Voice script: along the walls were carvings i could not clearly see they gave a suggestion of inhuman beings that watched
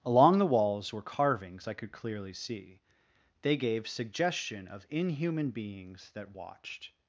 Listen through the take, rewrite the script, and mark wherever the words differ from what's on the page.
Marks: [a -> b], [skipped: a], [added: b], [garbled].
along the walls were carvings i could [skipped: not] clearly see they gave [skipped: a] suggestion of inhuman beings that watched